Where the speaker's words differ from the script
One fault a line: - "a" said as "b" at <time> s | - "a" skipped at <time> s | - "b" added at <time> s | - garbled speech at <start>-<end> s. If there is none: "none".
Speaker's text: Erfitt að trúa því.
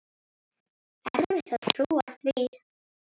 none